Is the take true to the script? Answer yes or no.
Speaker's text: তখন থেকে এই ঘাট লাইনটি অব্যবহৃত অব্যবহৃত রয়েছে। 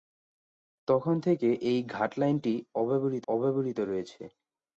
yes